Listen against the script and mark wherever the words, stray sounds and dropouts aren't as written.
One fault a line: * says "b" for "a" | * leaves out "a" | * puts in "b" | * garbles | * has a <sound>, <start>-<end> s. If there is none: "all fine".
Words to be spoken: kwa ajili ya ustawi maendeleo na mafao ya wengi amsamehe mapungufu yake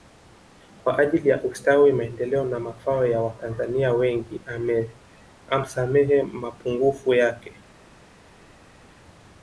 * puts in "watanzania"